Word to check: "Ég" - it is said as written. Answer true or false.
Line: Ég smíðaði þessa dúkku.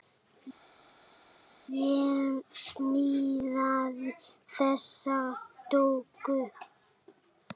true